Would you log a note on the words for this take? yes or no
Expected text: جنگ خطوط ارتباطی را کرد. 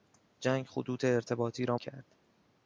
no